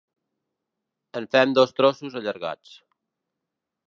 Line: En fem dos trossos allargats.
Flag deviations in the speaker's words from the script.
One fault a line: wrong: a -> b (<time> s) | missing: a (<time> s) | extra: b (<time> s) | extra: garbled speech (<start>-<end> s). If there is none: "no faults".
no faults